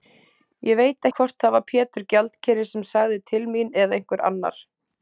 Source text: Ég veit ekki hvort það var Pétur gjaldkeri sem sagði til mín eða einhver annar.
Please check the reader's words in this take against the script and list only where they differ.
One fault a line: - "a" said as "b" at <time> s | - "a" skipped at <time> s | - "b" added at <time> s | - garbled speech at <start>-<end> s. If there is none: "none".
- "ekki" skipped at 1.1 s